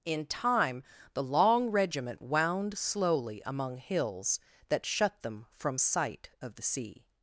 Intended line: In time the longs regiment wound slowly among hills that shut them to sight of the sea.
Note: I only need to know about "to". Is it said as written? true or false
false